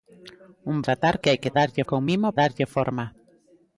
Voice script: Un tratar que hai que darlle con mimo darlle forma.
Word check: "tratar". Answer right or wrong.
right